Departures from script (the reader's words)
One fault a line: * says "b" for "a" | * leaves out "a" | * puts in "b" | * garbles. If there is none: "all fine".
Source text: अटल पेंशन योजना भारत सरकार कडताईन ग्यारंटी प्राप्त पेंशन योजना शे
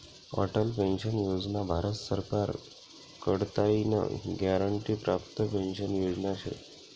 all fine